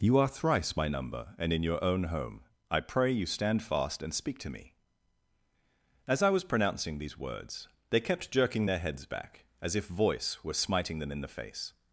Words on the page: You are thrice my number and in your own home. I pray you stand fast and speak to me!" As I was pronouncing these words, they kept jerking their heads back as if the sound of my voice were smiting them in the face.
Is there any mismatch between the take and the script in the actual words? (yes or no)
yes